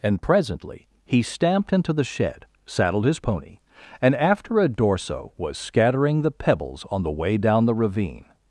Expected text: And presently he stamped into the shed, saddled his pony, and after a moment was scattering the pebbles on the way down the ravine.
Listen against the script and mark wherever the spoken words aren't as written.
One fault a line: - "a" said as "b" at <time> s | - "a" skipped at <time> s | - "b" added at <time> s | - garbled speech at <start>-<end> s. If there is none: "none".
- "moment" said as "dorso" at 4.7 s